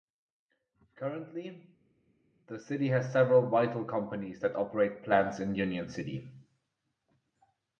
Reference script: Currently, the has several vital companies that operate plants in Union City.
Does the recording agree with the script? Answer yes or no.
no